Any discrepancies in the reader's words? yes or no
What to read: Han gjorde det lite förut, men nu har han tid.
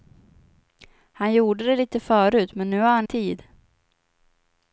no